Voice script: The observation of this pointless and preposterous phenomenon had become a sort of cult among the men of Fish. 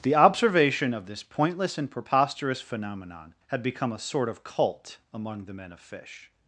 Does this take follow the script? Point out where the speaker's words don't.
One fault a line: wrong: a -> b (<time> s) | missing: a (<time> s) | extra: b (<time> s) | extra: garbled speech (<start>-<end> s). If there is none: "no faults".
no faults